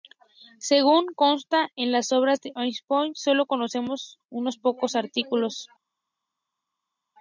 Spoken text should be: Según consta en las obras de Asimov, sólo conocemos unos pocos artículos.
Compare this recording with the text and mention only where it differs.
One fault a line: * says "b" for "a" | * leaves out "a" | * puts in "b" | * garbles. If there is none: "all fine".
all fine